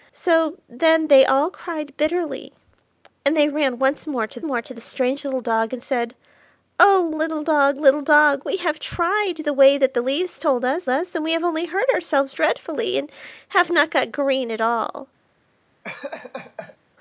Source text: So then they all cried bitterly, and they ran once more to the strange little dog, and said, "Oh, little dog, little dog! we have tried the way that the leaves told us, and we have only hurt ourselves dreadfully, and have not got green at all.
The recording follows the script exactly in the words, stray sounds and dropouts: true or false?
false